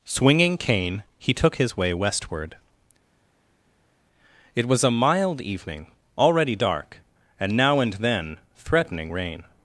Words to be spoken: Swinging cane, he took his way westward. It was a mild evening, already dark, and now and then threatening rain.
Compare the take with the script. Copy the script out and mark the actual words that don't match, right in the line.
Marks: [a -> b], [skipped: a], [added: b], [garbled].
Swinging cane, he took his way westward. It was a mild evening, already dark, and now and then threatening rain.